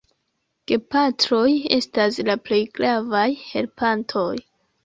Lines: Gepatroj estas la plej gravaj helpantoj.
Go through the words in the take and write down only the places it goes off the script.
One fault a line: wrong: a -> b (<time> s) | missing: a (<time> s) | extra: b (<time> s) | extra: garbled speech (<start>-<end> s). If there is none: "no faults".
no faults